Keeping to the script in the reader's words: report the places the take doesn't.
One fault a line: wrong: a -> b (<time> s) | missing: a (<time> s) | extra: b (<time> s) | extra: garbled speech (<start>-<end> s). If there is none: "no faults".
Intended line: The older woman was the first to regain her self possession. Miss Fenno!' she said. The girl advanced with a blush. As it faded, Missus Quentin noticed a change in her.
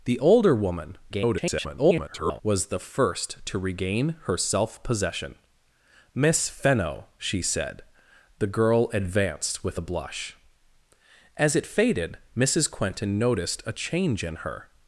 extra: garbled speech (1.1-2.4 s)